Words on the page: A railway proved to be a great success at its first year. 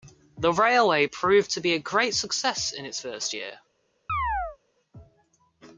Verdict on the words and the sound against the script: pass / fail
fail